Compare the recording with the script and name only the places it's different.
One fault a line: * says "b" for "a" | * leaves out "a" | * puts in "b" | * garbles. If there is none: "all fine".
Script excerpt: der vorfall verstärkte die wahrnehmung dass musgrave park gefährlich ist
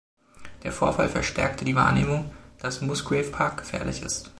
all fine